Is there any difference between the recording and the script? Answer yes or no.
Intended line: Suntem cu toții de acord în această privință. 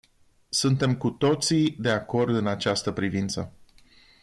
no